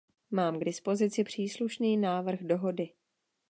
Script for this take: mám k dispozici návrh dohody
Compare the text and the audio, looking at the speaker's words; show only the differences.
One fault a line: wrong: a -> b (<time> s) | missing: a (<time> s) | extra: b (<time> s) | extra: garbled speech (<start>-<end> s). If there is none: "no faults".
extra: příslušný (1.2 s)